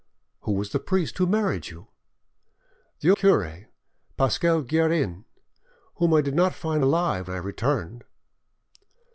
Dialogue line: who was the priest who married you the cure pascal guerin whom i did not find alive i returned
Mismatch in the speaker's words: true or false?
false